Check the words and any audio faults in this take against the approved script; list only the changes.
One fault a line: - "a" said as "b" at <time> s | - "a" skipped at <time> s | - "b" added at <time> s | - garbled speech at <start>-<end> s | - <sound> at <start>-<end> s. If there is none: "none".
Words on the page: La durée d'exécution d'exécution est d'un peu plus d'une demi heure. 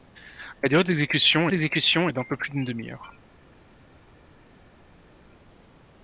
none